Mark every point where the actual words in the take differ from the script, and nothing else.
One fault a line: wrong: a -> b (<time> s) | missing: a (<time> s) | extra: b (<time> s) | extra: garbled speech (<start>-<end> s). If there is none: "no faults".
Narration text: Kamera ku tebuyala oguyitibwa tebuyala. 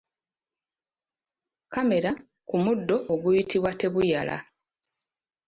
wrong: tebuyala -> muddo (2.6 s)